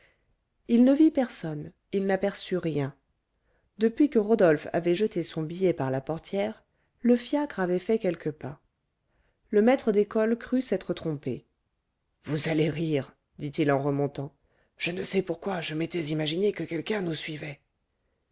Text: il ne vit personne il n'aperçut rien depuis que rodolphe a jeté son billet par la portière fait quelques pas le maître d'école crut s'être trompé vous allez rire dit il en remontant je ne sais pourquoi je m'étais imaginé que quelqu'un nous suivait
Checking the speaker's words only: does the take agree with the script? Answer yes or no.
no